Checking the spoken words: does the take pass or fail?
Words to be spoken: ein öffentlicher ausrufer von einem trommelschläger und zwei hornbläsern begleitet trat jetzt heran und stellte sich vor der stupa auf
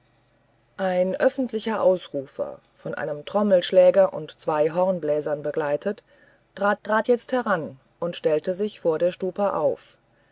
fail